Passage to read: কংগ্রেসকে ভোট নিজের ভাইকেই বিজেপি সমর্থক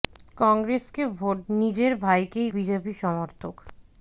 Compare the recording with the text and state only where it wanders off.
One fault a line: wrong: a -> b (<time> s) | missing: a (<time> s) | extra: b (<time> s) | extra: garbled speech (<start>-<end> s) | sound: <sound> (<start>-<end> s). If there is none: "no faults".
no faults